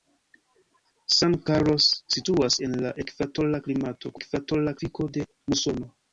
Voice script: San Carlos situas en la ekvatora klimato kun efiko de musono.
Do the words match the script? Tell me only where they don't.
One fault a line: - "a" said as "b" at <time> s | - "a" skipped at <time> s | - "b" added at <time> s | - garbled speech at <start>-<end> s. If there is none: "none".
- "kun" said as "ekvatora" at 4.2 s